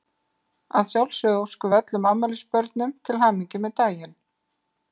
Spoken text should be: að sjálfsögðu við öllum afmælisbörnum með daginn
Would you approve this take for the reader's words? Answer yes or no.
no